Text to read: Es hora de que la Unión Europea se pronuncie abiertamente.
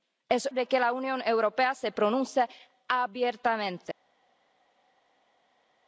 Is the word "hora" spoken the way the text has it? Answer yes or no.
no